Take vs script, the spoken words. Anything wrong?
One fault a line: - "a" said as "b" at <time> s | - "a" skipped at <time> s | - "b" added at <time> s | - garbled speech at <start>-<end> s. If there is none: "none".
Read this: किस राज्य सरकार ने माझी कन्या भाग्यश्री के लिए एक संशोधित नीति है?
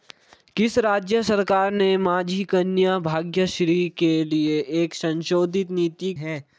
none